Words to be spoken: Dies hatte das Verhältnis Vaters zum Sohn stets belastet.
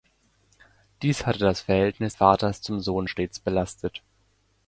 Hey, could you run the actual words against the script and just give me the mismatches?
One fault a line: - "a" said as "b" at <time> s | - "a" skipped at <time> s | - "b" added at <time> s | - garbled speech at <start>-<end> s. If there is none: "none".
none